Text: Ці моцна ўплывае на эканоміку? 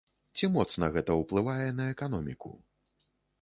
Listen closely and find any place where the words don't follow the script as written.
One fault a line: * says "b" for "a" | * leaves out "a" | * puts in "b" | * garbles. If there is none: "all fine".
* puts in "гэта"